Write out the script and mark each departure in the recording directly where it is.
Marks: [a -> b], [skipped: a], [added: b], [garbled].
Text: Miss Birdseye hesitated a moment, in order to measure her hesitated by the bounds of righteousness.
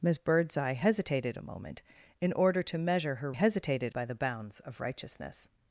Miss Birdseye hesitated a moment, in order to measure her hesitated by the bounds of righteousness.